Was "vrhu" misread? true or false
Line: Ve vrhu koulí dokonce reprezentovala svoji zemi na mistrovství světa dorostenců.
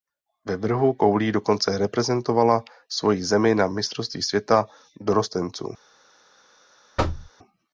false